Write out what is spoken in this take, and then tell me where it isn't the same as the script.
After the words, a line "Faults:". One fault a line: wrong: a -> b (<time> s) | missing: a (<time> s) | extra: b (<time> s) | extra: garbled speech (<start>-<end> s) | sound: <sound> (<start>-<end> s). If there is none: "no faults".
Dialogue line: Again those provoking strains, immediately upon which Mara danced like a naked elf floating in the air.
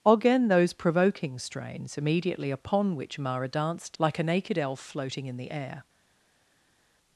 Again those provoking strains, immediately upon which Mara danced like a naked elf floating in the air.
Faults:
no faults